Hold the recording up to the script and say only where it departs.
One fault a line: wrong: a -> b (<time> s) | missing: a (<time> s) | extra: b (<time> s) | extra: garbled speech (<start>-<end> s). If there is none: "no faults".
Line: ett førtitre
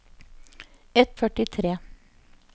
no faults